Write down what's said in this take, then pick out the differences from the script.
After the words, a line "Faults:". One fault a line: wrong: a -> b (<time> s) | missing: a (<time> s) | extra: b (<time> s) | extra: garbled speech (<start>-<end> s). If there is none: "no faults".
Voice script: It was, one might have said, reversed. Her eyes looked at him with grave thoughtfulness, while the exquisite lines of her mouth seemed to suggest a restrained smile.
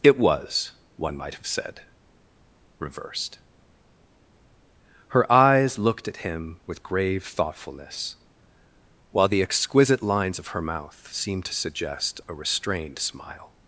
It was, one might have said, reversed. Her eyes looked at him with grave thoughtfulness, while the exquisite lines of her mouth seemed to suggest a restrained smile.
Faults:
no faults